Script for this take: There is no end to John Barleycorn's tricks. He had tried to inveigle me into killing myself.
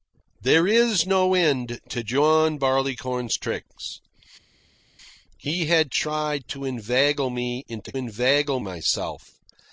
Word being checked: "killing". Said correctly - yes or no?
no